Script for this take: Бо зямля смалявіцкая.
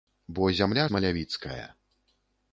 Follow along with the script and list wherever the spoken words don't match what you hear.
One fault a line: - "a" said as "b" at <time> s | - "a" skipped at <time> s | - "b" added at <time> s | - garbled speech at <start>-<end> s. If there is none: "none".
none